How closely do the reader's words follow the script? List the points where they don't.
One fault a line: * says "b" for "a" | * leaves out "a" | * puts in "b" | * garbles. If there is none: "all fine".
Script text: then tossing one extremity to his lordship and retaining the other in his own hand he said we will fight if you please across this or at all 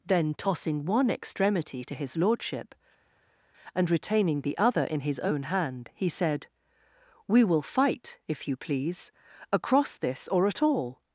all fine